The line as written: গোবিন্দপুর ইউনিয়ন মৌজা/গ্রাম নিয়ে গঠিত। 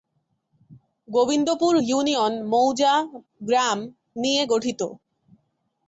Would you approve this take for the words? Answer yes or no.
yes